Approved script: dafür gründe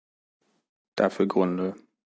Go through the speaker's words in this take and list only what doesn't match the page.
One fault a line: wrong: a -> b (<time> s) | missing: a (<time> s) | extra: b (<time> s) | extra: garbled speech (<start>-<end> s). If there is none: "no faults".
no faults